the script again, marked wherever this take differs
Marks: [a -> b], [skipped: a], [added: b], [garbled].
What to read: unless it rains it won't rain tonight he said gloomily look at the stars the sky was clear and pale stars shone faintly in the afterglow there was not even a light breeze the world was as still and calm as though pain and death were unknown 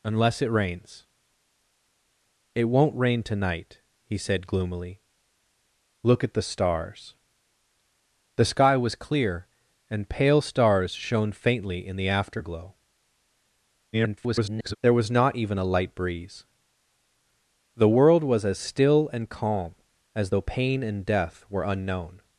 unless it rains it won't rain tonight he said gloomily look at the stars the sky was clear and pale stars shone faintly in the afterglow [garbled] there was not even a light breeze the world was as still and calm as though pain and death were unknown